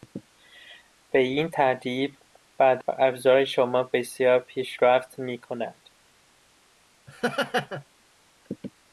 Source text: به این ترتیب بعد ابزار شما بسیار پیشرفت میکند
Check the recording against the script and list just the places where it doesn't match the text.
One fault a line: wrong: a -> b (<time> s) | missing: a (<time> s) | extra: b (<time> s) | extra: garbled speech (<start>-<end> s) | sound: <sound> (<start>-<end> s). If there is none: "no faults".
sound: laugh (7.1-7.8 s)